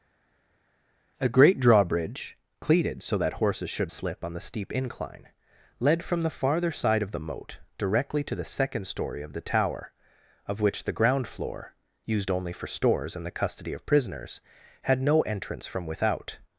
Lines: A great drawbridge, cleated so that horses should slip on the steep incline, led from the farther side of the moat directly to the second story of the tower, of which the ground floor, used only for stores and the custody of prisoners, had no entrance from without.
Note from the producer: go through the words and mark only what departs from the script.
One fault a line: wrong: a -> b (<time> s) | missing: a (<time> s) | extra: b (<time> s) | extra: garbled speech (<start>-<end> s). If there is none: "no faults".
no faults